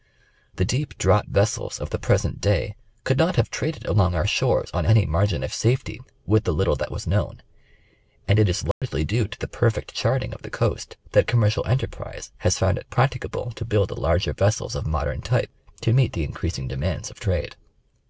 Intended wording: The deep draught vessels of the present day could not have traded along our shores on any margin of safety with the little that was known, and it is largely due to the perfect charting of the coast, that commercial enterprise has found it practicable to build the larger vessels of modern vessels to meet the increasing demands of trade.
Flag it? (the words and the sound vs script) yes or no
yes